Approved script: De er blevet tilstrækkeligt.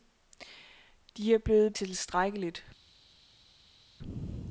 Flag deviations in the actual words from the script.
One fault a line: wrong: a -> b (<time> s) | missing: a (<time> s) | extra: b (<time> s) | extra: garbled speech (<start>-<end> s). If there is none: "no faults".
no faults